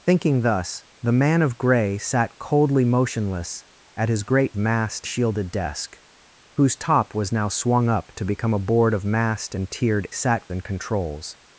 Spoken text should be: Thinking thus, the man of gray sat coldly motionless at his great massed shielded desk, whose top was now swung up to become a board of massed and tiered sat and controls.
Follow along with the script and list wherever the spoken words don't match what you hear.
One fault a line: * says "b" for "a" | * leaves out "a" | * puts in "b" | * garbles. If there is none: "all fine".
all fine